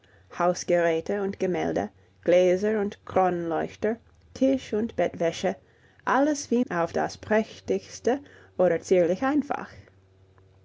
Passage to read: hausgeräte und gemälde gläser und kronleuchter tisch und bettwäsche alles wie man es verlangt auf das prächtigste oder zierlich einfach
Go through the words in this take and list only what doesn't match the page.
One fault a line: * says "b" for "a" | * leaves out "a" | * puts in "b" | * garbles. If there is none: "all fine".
* leaves out "man es verlangt"